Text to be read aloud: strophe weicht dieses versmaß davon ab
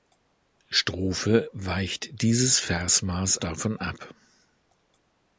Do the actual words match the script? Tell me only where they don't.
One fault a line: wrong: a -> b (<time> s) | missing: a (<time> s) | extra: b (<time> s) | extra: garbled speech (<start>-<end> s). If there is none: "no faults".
no faults